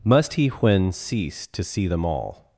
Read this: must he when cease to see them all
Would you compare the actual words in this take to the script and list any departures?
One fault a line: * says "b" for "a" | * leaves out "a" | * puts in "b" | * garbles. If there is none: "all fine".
all fine